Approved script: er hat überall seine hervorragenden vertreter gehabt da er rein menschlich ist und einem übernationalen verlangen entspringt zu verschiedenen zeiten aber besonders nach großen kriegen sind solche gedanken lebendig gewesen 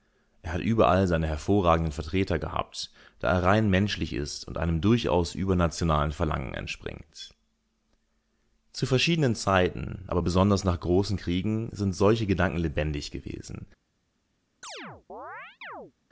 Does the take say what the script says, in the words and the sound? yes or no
no